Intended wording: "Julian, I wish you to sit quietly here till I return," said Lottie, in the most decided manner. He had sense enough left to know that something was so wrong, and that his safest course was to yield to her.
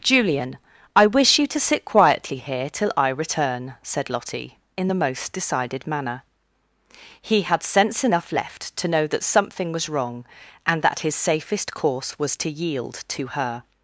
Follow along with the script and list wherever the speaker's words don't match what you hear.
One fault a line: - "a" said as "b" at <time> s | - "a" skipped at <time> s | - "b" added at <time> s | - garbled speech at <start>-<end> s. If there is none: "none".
- "so" skipped at 9.9 s